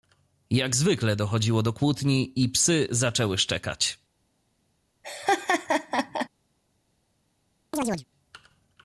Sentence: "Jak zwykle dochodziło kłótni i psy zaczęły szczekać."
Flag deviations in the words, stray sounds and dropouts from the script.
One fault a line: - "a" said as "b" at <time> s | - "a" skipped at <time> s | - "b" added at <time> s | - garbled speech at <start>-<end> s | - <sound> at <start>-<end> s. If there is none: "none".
- "do" added at 1.6 s
- laugh at 5.0-6.3 s
- chirp at 7.7-8.1 s